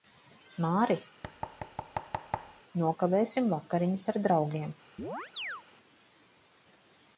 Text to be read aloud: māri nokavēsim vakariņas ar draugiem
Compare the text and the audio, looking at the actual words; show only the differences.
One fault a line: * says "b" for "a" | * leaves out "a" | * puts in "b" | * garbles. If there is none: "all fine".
all fine